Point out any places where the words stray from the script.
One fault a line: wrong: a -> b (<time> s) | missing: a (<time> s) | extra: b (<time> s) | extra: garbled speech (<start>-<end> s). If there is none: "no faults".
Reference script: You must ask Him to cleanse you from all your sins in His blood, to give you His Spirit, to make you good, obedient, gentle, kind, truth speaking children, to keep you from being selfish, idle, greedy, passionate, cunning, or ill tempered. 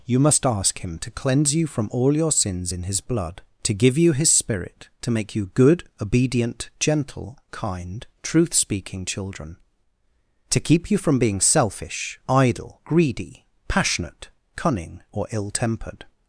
no faults